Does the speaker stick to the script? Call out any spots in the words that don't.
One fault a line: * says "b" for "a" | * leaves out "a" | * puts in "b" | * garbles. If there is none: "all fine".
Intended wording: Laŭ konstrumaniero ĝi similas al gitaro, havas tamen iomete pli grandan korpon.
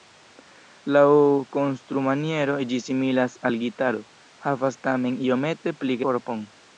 * leaves out "grandan"